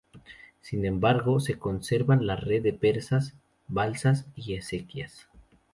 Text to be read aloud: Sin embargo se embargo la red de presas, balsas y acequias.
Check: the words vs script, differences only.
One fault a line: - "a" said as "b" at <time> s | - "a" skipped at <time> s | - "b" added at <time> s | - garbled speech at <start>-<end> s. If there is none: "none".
- "embargo" said as "conservan" at 1.6 s